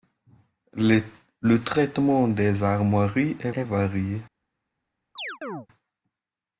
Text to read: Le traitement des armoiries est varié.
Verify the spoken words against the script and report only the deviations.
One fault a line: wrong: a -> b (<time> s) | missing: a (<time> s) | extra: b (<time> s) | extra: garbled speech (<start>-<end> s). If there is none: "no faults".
extra: est (3.5 s)